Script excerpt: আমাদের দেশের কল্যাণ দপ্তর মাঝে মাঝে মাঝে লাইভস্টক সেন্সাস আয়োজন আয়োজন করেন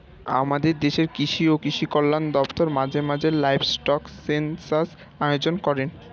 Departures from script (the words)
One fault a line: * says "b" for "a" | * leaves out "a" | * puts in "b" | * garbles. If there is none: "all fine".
* puts in "কৃষি ও কৃষি"
* leaves out "মাঝে"
* leaves out "আয়োজন"